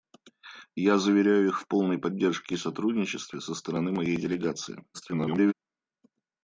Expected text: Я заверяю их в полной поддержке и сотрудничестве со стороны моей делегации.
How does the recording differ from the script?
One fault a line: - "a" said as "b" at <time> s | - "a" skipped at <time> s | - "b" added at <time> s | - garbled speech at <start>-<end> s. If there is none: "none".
- garbled speech at 4.9-5.5 s